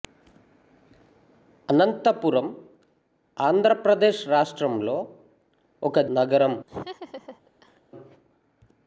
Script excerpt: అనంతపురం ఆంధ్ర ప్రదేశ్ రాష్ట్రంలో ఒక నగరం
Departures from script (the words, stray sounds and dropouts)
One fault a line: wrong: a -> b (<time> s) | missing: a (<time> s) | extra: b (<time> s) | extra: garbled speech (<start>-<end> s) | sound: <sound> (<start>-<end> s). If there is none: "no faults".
sound: laugh (6.7-7.8 s)